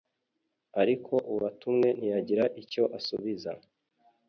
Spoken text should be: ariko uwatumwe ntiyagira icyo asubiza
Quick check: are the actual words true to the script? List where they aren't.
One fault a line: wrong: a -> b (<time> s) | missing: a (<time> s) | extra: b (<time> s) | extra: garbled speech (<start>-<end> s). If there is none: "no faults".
no faults